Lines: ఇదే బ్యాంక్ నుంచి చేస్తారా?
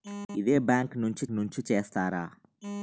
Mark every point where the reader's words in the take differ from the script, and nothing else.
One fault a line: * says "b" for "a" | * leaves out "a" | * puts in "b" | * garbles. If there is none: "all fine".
* puts in "నుంచి"